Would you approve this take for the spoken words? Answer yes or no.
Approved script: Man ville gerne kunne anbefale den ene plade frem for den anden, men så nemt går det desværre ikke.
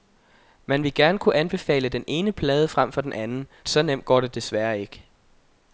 no